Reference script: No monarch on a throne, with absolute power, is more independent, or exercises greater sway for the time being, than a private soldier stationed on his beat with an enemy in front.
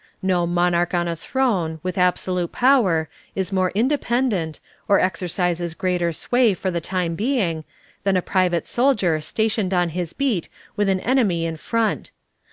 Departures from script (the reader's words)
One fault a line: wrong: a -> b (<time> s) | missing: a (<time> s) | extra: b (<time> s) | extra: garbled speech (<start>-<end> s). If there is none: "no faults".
no faults